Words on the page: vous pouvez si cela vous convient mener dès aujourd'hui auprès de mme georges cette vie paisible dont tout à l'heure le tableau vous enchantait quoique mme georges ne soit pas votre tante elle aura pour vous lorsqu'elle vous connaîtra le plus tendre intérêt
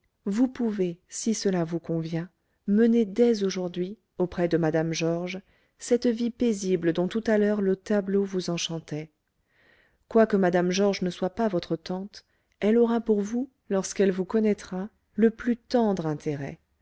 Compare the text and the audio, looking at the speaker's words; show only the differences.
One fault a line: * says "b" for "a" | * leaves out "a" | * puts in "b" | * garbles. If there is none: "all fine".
all fine